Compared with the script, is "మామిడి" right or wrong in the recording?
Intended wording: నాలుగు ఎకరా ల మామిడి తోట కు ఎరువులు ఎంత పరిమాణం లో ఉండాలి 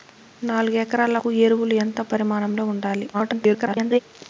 wrong